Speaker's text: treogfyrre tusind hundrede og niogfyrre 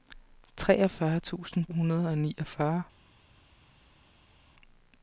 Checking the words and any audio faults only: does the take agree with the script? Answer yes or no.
yes